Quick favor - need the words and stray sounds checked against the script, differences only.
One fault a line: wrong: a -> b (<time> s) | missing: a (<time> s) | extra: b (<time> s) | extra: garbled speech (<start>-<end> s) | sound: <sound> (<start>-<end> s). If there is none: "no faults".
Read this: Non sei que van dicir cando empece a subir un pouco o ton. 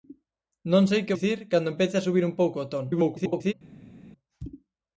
missing: van (1.2 s)
extra: garbled speech (2.9-3.5 s)